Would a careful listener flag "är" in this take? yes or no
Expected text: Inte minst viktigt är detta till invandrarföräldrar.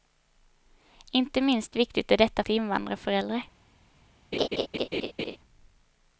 no